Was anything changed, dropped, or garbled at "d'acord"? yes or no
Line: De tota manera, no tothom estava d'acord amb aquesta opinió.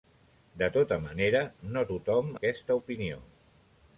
yes